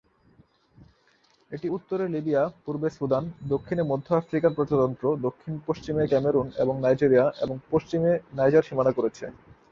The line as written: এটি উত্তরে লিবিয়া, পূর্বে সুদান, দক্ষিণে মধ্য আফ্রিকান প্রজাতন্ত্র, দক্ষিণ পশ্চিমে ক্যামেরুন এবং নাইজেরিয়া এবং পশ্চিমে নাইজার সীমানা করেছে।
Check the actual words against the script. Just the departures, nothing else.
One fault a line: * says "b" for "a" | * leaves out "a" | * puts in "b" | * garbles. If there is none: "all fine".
all fine